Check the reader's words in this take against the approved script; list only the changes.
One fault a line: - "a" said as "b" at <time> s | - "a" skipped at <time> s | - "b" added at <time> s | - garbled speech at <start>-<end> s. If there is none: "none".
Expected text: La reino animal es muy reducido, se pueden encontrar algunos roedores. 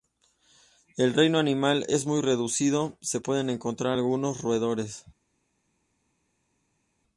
- "La" said as "El" at 1.0 s